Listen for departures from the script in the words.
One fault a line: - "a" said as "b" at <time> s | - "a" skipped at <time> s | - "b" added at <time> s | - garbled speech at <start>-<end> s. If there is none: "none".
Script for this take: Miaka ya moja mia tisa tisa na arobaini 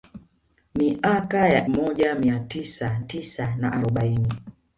none